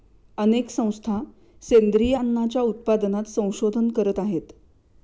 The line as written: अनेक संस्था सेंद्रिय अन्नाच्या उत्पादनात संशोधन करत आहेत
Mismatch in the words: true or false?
false